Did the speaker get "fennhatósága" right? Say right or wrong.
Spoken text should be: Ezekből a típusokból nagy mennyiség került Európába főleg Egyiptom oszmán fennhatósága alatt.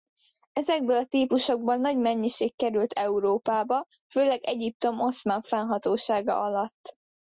right